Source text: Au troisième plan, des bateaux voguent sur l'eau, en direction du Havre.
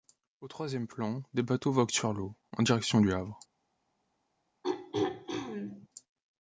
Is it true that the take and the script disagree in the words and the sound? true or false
true